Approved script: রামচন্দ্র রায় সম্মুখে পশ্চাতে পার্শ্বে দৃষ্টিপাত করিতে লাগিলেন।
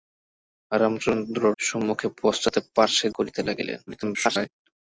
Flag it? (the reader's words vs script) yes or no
yes